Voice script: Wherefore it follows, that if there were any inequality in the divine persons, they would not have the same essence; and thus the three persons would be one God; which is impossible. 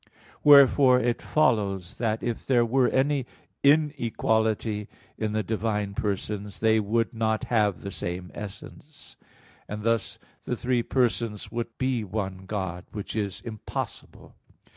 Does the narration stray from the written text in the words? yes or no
no